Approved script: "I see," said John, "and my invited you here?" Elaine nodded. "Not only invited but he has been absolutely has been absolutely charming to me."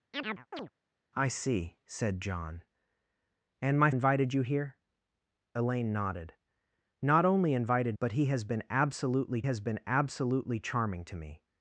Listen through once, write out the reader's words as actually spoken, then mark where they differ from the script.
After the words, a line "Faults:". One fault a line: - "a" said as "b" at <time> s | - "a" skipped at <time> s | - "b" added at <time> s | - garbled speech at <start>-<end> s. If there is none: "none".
"I see," said John, "and my invited you here?" Elaine nodded. "Not only invited but he has been absolutely has been absolutely charming to me."
Faults:
none